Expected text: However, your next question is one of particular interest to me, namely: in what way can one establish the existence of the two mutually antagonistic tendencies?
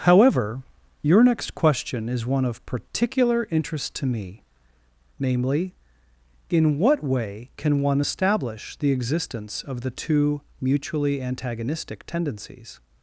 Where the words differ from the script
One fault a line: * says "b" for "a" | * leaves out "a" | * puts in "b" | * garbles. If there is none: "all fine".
all fine